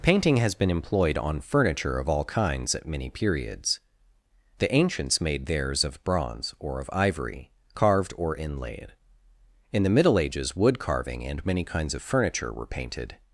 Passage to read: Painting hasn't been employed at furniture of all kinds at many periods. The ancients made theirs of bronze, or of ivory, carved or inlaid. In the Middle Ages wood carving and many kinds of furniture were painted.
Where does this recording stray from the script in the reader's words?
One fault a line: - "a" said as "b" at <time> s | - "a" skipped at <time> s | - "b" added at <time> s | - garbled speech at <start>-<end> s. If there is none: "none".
- "hasn't" said as "has" at 0.4 s
- "at" said as "on" at 1.1 s